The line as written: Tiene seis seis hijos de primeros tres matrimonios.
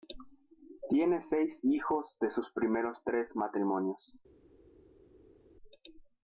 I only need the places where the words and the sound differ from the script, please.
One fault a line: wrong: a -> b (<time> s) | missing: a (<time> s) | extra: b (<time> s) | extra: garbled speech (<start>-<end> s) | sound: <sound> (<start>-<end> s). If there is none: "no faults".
missing: seis (1.6 s)
extra: sus (2.3 s)